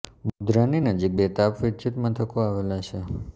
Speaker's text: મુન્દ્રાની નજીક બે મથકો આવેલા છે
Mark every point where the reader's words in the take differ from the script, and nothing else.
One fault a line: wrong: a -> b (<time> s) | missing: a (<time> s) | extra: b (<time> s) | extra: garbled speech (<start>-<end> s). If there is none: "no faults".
extra: તાપ વિદ્યુત (1.4 s)